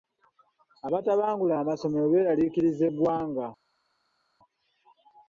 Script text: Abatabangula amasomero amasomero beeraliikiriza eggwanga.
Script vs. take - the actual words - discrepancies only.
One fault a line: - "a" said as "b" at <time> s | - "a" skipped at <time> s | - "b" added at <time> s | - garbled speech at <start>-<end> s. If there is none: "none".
- "amasomero" skipped at 2.0 s